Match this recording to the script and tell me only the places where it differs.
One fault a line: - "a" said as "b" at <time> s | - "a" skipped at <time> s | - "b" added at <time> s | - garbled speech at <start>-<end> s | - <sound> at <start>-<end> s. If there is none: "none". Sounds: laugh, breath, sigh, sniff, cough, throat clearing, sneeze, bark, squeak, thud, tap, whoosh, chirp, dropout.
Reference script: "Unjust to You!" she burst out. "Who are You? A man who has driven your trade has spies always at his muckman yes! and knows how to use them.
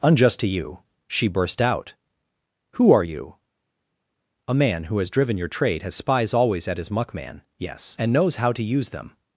none